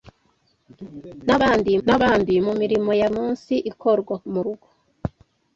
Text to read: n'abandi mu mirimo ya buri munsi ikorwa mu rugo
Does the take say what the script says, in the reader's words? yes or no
no